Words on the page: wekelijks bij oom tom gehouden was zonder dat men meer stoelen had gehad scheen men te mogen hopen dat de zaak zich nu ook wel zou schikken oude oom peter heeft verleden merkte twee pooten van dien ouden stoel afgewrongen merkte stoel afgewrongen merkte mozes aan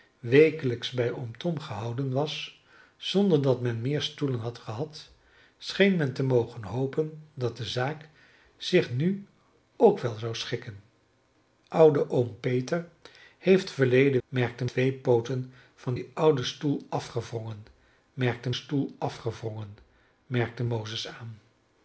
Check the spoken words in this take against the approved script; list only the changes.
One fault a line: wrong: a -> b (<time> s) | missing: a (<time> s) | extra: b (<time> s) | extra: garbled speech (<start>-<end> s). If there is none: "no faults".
no faults